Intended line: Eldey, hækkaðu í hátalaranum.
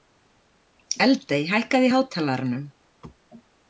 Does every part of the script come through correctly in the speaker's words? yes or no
yes